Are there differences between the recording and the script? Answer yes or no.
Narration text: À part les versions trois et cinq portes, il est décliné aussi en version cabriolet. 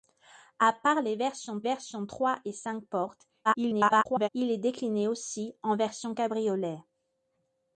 yes